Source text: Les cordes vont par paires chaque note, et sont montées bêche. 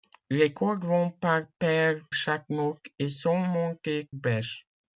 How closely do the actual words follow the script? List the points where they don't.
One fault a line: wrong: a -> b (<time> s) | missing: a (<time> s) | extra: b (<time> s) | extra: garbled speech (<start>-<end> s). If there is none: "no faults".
no faults